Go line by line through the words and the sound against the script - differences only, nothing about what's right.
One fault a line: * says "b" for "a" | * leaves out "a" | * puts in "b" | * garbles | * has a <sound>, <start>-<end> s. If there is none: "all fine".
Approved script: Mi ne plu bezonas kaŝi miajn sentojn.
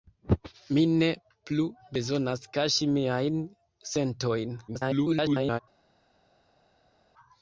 * garbles